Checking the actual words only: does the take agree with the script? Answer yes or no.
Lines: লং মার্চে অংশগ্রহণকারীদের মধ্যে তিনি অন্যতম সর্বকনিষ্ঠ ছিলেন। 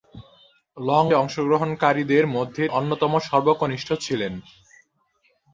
no